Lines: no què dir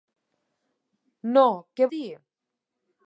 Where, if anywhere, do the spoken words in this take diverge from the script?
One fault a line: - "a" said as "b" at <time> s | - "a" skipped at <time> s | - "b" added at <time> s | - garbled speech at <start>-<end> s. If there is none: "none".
none